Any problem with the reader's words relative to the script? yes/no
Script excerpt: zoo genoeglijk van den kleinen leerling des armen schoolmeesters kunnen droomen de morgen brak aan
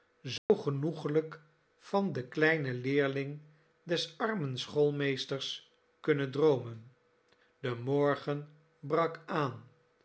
no